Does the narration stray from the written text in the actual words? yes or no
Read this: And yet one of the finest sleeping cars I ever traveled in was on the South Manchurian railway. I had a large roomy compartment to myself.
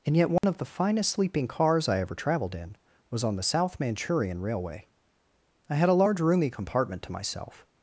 no